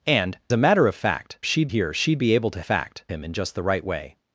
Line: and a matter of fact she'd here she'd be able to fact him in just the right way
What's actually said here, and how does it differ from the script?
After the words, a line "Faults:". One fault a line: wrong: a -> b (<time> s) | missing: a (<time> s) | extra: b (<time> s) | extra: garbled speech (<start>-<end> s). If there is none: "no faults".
and a matter of fact she'd here she'd be able to fact him in just the right way
Faults:
no faults